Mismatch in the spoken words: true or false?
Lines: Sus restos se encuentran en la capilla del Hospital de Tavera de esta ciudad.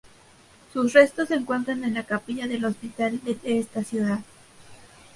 true